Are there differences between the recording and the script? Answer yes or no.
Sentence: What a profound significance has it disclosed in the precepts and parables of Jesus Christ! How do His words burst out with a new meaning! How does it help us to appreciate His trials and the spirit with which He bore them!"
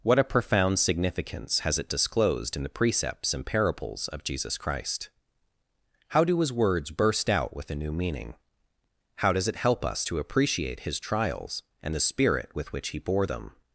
no